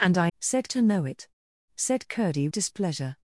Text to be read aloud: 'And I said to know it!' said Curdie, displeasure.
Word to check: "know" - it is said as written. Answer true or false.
true